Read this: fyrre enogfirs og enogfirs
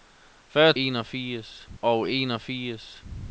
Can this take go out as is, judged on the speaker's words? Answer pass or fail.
pass